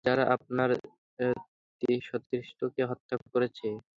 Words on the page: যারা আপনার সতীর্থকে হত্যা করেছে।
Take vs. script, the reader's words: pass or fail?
pass